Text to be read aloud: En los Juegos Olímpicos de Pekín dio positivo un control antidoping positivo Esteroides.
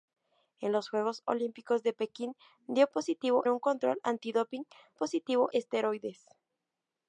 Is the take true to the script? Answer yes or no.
yes